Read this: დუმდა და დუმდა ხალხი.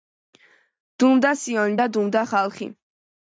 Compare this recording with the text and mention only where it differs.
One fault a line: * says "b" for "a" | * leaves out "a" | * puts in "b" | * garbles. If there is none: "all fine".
* puts in "სიონი"